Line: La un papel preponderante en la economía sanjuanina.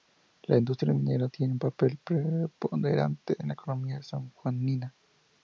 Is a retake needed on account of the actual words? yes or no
yes